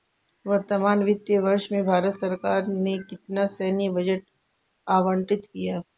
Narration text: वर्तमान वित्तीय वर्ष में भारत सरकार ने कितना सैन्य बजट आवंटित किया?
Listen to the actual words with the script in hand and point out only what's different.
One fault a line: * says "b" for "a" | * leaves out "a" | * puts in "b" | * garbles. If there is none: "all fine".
all fine